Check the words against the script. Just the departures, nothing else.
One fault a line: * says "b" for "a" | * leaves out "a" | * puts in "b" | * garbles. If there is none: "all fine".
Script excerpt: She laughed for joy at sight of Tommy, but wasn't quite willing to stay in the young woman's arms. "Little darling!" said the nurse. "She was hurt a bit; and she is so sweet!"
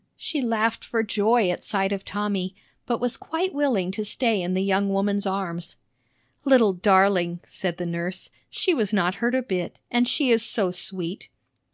* says "was" for "wasn't"
* puts in "not"